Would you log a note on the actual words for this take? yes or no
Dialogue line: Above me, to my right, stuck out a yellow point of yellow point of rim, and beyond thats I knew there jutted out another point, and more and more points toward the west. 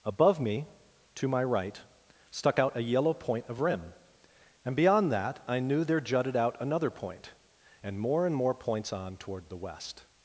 yes